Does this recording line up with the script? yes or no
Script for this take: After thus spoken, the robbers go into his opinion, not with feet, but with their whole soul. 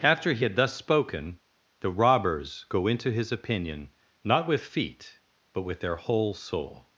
no